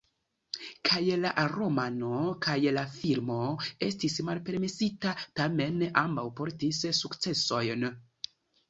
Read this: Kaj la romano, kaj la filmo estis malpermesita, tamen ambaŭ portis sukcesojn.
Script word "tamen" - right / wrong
right